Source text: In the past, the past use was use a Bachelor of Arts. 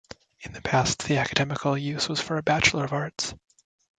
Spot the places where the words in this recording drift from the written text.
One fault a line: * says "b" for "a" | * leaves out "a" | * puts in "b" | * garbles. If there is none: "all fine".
* says "academical" for "past"
* says "for" for "use"